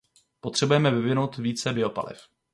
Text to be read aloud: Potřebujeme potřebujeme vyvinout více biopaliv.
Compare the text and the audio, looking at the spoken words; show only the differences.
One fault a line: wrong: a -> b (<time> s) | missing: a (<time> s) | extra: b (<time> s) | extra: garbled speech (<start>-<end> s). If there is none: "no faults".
missing: potřebujeme (0.9 s)